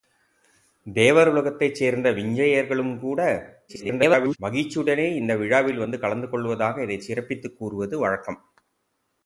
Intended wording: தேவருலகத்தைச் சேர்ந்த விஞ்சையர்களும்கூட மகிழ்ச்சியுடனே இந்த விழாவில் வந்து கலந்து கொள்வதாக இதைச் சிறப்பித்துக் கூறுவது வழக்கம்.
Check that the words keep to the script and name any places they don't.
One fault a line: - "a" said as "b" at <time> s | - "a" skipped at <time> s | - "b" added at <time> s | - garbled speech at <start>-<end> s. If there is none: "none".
- garbled speech at 3.7-4.4 s